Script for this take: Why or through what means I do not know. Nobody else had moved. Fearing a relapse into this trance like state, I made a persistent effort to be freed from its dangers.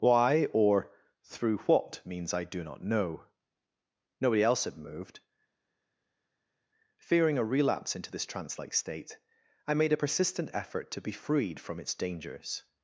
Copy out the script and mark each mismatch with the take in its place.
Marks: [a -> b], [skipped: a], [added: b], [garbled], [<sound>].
Why or through what means I do not know. Nobody else had moved. Fearing a relapse into this trance like state, I made a persistent effort to be freed from its dangers.